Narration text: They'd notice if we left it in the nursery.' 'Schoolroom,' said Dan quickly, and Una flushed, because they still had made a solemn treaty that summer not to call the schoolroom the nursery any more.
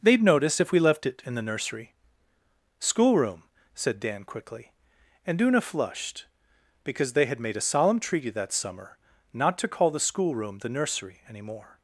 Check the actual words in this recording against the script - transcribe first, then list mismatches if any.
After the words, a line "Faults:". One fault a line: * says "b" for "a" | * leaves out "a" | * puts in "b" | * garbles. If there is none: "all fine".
They'd notice if we left it in the nursery.' 'Schoolroom,' said Dan quickly, and Una flushed, because they had made a solemn treaty that summer not to call the schoolroom the nursery any more.
Faults:
* leaves out "still"